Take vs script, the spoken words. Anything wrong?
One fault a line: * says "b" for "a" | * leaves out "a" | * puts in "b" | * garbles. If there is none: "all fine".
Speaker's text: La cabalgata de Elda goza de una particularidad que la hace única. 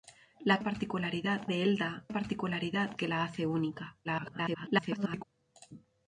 * says "particularidad" for "cabalgata"
* leaves out "goza de una"
* garbles